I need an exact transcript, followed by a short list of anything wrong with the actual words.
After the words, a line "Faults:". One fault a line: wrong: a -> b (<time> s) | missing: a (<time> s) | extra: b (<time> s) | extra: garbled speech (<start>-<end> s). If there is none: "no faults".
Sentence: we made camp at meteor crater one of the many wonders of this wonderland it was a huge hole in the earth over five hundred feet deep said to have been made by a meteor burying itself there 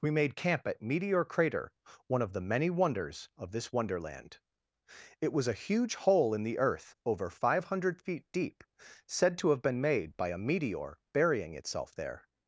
we made camp at meteor crater one of the many wonders of this wonderland it was a huge hole in the earth over five hundred feet deep said to have been made by a meteor burying itself there
Faults:
no faults